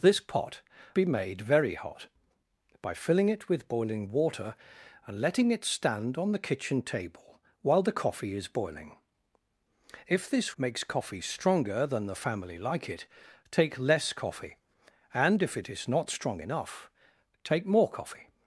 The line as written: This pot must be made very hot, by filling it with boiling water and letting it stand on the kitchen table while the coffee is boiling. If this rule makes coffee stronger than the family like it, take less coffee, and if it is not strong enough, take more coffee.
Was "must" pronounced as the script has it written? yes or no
no